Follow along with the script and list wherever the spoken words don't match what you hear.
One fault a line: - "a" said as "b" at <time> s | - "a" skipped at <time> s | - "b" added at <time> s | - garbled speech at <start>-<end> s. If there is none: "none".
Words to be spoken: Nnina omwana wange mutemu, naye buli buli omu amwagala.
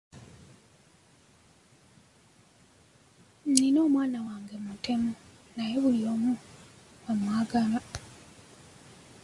- "buli" skipped at 6.0 s